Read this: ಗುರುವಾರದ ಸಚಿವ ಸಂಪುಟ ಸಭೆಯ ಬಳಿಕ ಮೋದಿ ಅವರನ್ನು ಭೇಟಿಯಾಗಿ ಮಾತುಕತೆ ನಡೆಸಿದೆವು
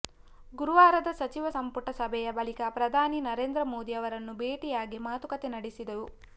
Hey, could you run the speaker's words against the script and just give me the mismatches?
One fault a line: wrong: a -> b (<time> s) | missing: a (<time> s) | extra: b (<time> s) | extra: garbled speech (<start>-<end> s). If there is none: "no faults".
extra: ಪ್ರಧಾನಿ ನರೇಂದ್ರ (2.7 s)